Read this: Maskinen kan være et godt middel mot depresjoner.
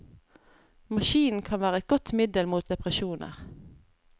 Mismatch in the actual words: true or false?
false